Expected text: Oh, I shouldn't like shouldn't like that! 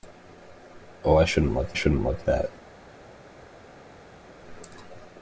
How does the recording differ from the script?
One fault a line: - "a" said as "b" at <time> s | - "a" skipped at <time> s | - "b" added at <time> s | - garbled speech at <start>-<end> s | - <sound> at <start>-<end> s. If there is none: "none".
none